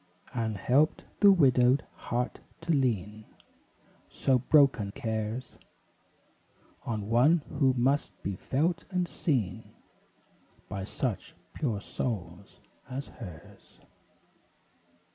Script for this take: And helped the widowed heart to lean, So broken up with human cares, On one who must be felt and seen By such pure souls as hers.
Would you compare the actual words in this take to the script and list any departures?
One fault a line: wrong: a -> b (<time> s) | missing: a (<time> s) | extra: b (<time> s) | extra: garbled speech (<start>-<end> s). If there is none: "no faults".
missing: up with human (4.9 s)